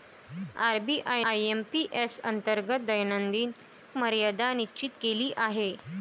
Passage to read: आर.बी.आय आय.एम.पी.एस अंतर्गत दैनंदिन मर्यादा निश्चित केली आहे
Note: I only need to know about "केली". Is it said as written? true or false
true